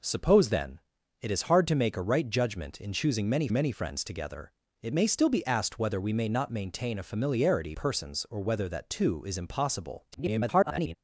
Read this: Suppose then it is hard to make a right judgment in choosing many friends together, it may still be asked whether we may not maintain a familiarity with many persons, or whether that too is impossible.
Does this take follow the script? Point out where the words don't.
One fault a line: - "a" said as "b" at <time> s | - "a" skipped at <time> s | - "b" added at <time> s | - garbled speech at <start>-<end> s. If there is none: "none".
- "many" added at 3.5 s
- "with many" skipped at 7.8 s
- garbled speech at 10.1-11.0 s